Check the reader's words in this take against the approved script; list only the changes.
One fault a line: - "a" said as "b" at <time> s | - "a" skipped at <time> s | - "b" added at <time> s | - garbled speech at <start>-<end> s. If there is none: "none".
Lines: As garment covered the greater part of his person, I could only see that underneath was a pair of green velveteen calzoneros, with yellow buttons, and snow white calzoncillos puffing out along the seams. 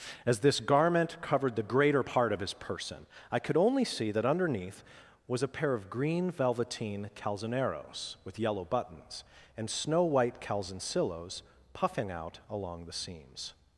- "this" added at 0.4 s